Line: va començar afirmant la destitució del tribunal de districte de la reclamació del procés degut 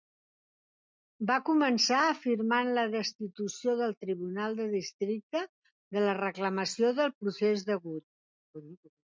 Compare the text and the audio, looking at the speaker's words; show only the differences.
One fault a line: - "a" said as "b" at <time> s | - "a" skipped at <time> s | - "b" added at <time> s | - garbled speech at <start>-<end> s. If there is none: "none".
none